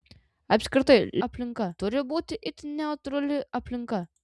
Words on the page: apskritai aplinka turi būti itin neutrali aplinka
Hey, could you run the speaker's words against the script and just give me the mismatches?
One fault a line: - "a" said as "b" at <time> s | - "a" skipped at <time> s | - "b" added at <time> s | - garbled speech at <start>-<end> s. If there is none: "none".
none